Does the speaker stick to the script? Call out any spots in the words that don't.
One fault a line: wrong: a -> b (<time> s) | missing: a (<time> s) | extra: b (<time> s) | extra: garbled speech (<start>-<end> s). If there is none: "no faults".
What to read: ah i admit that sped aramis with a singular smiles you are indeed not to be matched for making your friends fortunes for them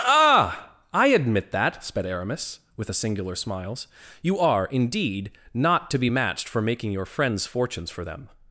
no faults